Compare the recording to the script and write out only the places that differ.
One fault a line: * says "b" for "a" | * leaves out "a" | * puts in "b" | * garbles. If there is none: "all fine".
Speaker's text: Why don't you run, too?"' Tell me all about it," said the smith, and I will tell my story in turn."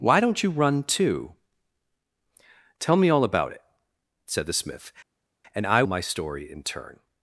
* leaves out "will tell"